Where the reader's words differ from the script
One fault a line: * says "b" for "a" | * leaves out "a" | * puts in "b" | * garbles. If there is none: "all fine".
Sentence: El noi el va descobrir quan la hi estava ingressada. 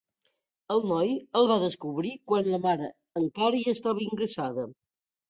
* puts in "mare encara"